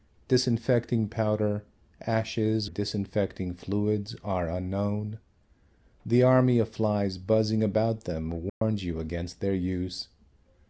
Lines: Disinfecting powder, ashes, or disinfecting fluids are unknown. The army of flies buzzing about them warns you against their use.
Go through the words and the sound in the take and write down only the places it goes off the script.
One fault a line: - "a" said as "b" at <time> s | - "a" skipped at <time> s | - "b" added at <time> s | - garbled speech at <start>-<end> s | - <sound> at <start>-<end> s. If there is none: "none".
- "or" skipped at 2.7 s
- dropout at 8.5-8.6 s